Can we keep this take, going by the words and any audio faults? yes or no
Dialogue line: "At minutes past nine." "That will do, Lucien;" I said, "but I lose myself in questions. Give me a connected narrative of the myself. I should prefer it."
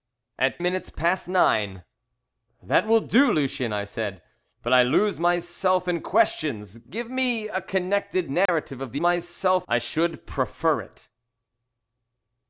no